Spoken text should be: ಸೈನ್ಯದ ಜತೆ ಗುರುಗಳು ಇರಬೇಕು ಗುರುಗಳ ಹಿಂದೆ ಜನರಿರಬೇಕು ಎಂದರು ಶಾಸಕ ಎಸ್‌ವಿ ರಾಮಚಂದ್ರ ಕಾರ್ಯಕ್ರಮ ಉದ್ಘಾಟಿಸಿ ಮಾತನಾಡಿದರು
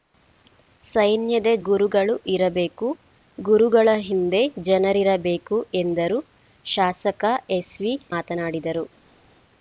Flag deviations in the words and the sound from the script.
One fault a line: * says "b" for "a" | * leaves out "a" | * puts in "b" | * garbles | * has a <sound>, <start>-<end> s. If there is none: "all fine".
* leaves out "ಜತೆ"
* leaves out "ರಾಮಚಂದ್ರ ಕಾರ್ಯಕ್ರಮ ಉದ್ಘಾಟಿಸಿ"